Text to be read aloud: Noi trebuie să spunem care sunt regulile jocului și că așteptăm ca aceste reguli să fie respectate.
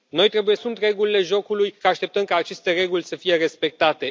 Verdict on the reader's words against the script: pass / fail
fail